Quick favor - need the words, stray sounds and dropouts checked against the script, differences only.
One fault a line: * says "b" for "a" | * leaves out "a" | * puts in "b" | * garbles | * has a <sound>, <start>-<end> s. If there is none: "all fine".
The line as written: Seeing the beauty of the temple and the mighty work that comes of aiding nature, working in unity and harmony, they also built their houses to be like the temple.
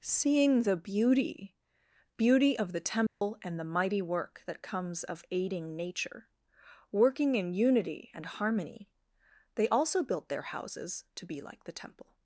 * puts in "beauty"
* has a dropout, 3.1-3.2 s